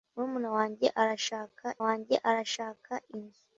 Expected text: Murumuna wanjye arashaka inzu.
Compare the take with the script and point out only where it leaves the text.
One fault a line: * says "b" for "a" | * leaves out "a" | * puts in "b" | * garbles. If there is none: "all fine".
* puts in "wanjye arashaka"